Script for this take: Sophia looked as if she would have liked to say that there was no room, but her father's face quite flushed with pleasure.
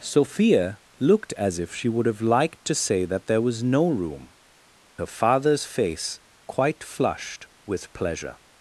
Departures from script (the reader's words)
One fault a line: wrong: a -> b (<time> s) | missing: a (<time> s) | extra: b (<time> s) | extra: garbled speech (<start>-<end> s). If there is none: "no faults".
missing: but (4.3 s)